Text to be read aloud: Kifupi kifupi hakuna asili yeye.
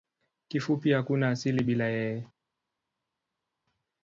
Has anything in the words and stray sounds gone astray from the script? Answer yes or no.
yes